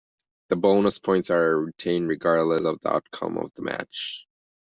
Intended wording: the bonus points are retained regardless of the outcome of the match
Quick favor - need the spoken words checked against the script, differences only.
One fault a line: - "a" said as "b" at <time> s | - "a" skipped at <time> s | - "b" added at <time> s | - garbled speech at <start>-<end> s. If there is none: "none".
none